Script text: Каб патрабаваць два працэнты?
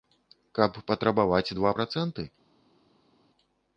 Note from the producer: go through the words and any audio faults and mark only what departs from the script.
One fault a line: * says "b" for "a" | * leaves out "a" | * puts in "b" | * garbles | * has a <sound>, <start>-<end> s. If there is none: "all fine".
all fine